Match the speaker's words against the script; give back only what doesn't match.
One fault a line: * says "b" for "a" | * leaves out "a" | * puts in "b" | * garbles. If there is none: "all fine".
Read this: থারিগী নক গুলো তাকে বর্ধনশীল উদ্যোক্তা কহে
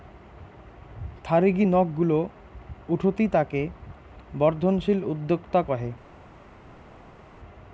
* puts in "উঠতি"